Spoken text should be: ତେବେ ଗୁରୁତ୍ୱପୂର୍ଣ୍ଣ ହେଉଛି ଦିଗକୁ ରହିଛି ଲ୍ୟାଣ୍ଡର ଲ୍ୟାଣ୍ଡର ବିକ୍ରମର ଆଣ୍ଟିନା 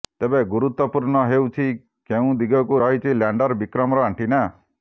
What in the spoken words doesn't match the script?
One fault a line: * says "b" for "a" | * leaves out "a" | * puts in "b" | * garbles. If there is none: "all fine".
* puts in "କେଉଁ"
* leaves out "ଲ୍ୟାଣ୍ଡର"